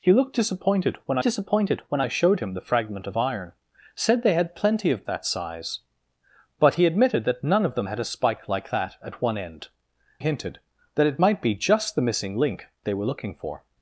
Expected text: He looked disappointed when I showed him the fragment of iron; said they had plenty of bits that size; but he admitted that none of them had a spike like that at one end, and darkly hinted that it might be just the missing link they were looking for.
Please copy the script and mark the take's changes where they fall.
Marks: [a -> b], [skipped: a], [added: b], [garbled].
He looked disappointed when [added: disappointed when] I showed him the fragment of iron; said they had plenty of [skipped: bits] that size; but he admitted that none of them had a spike like that at one end, [skipped: and darkly] hinted that it might be just the missing link they were looking for.